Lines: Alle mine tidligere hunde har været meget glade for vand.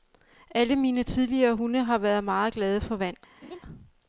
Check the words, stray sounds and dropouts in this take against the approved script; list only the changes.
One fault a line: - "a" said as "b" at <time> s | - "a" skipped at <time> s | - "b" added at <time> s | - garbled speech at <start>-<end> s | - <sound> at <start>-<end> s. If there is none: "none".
- laugh at 3.4-3.6 s